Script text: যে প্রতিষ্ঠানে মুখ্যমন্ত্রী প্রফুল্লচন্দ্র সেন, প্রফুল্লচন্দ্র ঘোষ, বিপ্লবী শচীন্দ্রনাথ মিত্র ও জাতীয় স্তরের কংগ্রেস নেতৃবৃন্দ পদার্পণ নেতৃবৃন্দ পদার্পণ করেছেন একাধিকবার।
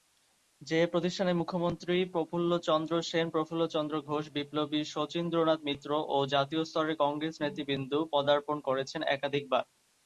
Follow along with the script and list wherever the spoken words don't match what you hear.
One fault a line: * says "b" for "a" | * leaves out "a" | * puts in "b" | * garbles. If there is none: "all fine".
* leaves out "নেতৃবৃন্দ পদার্পণ"